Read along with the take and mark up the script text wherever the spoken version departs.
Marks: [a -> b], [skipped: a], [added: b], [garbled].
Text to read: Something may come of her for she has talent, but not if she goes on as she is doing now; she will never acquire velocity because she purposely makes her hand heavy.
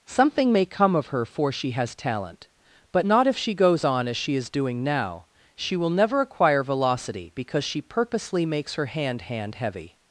Something may come of her for she has talent, but not if she goes on as she is doing now; she will never acquire velocity because she purposely makes her hand [added: hand] heavy.